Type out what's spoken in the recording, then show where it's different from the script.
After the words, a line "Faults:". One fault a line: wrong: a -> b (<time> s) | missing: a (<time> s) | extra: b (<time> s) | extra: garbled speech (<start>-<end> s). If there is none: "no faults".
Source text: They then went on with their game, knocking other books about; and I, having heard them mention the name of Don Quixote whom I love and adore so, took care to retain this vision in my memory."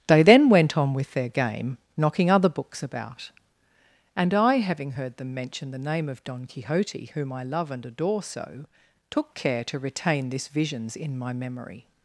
They then went on with their game, knocking other books about; and I, having heard them mention the name of Don Quixote whom I love and adore so, took care to retain this visions in my memory."
Faults:
wrong: vision -> visions (10.5 s)